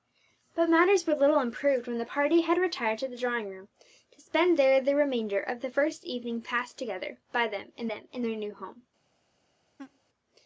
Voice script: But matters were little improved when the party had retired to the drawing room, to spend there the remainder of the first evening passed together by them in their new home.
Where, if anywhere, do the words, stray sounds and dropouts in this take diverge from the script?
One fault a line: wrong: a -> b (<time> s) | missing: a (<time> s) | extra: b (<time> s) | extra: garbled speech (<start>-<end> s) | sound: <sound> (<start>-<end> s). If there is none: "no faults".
extra: them in (7.9 s)
sound: laugh (9.8-10.0 s)